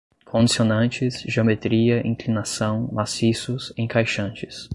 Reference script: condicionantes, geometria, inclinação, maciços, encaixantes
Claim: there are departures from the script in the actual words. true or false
false